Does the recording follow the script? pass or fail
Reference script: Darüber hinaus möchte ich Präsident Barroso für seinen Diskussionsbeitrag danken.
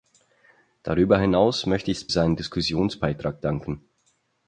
fail